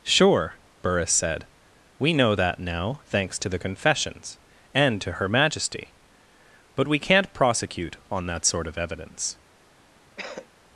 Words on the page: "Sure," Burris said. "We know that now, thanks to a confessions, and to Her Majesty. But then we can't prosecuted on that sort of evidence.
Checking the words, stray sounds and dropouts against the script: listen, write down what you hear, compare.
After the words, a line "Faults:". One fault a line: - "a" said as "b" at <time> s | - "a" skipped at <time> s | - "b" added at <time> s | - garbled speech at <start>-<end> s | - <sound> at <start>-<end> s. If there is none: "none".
"Sure," Burris said. "We know that now, thanks to the confessions, and to Her Majesty. But we can't prosecute on that sort of evidence.
Faults:
- "a" said as "the" at 3.5 s
- "then" skipped at 6.9 s
- "prosecuted" said as "prosecute" at 7.3 s
- cough at 10.2-10.5 s